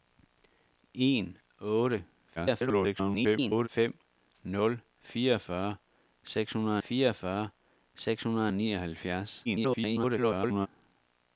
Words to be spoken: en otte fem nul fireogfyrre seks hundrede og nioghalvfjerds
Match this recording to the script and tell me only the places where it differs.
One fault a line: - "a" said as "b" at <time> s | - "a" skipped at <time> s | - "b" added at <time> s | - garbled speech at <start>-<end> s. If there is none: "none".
- garbled speech at 2.4-3.7 s
- "fireogfyrre seks hundrede" added at 6.9 s
- garbled speech at 9.4-10.7 s